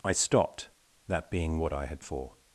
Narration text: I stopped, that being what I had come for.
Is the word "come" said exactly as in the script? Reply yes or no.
no